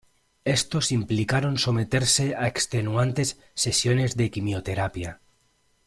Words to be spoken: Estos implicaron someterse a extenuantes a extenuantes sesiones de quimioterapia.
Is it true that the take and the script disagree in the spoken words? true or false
true